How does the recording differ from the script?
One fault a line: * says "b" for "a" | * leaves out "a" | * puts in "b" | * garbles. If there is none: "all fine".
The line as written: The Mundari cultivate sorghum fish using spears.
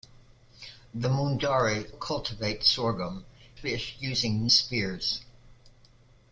all fine